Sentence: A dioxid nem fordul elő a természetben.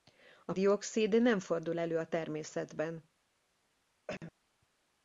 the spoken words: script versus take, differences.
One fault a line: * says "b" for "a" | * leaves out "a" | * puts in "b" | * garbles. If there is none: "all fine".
all fine